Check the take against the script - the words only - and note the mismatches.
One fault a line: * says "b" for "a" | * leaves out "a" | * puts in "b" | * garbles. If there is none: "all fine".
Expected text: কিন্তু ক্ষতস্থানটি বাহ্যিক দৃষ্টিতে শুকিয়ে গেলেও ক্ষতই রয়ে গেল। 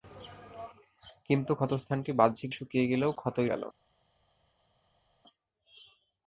* leaves out "দৃষ্টিতে"
* leaves out "রয়ে"